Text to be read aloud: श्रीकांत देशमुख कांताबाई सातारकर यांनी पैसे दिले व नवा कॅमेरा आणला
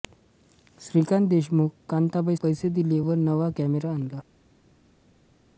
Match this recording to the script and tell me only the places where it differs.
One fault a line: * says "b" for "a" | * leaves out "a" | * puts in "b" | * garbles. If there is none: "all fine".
* leaves out "सातारकर यांनी"